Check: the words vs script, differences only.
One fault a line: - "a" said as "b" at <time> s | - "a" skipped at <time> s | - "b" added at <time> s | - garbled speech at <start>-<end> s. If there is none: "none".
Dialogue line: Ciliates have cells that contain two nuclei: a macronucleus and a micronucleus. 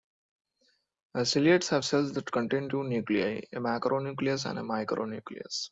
none